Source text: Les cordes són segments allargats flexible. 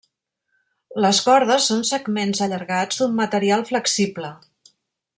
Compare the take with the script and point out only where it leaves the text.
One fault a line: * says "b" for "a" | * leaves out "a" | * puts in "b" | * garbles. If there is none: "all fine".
* puts in "d'un material"